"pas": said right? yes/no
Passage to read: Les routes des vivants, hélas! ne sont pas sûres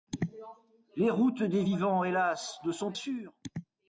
no